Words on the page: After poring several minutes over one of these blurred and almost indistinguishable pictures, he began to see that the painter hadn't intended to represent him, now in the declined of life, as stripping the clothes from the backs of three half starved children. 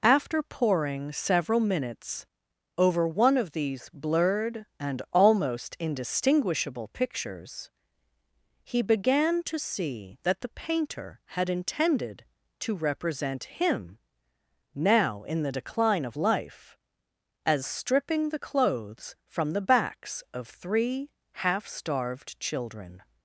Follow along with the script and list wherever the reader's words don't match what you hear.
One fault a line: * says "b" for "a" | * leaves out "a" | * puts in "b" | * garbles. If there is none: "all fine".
* says "had" for "hadn't"
* says "decline" for "declined"